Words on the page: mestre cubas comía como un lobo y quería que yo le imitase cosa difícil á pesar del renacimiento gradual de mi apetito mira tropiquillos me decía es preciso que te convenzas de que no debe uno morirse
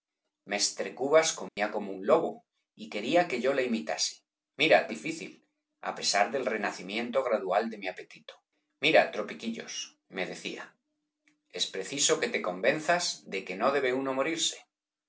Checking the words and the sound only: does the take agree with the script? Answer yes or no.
no